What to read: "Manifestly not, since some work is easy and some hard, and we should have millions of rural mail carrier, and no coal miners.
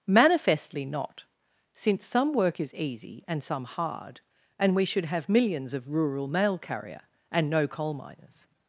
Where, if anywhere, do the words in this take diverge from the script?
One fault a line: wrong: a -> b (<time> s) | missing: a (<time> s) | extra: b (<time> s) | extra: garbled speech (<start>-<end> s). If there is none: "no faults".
no faults